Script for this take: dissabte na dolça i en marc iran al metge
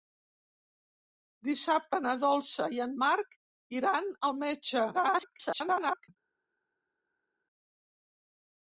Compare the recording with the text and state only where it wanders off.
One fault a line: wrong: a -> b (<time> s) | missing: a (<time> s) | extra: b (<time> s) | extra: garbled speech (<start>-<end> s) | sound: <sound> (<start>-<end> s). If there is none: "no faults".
extra: garbled speech (4.9-6.1 s)